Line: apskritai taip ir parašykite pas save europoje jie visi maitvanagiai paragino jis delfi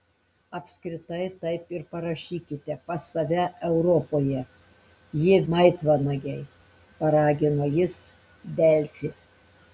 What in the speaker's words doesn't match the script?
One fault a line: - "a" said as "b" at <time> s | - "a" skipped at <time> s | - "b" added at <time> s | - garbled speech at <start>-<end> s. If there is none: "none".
- "visi" skipped at 5.4 s